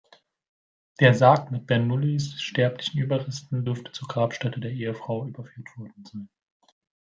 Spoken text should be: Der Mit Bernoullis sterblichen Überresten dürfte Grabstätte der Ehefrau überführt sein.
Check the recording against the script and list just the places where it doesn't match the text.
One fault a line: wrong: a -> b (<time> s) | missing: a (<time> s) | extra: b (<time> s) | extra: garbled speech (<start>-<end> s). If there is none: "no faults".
extra: Sarg (1.1 s)
extra: zur (3.9 s)
extra: worden (5.8 s)